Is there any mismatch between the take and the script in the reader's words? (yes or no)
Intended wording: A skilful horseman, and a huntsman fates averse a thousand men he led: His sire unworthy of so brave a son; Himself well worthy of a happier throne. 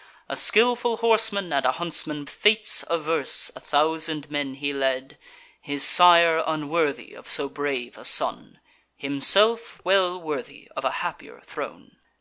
no